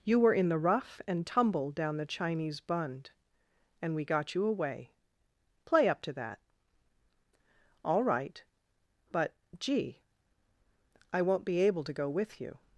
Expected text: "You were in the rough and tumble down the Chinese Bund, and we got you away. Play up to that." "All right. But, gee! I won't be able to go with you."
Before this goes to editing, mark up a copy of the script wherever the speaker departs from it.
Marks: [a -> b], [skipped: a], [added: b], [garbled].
"You were in the rough and tumble down the Chinese Bund, and we got you away. Play up to that." "All right. But, gee! I won't be able to go with you."